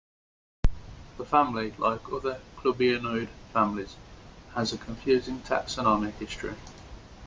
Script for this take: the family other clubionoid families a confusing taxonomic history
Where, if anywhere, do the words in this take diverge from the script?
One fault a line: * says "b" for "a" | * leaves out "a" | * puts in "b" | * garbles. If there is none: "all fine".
* puts in "like"
* puts in "has"